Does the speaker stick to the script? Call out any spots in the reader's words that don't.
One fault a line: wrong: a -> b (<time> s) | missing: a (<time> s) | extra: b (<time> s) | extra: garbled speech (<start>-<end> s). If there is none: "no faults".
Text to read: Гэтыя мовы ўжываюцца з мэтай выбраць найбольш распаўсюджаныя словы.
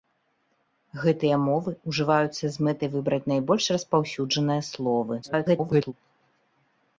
extra: garbled speech (5.2-5.9 s)